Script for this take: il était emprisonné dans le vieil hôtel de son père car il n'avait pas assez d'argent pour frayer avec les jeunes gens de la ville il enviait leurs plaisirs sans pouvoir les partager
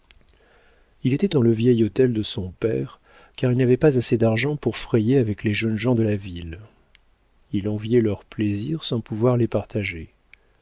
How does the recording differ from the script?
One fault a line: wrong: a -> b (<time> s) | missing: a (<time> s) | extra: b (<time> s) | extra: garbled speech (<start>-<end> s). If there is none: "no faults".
missing: emprisonné (1.4 s)